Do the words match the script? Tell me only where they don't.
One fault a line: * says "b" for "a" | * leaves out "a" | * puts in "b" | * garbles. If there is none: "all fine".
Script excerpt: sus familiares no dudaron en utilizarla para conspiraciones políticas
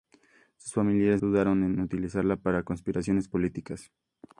* leaves out "no"